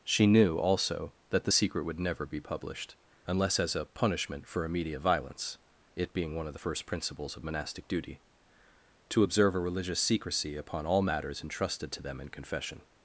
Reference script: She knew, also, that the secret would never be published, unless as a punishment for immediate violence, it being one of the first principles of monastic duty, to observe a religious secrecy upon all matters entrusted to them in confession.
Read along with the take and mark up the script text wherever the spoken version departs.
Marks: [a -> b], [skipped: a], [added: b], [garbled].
She knew, also, that the secret would never be published, unless as a punishment for immediate violence, it being one of the first principles of monastic duty, to observe a religious secrecy upon all matters entrusted to them in confession.